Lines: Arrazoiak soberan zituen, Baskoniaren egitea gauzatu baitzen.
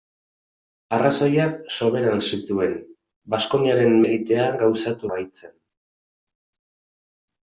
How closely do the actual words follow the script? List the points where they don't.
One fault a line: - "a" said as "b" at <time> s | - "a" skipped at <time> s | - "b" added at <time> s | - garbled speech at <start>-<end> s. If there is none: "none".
none